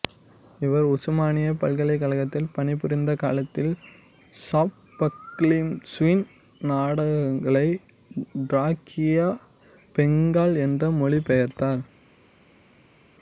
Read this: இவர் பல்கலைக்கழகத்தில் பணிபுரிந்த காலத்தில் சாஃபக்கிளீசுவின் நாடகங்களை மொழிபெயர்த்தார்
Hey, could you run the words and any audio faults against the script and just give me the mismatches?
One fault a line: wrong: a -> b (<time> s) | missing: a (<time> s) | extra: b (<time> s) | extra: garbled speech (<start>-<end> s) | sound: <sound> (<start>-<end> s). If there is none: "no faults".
extra: உசுமானியா (0.9 s)
extra: டிராக்கியா பெங்கால் என்று (8.5 s)